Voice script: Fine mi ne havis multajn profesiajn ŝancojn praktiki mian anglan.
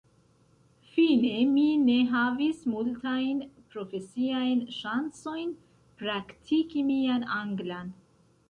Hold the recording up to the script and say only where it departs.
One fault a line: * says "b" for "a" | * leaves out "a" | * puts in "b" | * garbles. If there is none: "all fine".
all fine